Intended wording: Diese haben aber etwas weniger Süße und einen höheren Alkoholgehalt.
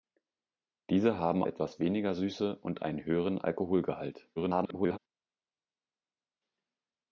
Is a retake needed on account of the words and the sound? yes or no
yes